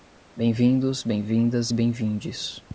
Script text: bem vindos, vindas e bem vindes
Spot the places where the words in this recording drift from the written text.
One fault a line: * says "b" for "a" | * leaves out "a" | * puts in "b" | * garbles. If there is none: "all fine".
* puts in "bem"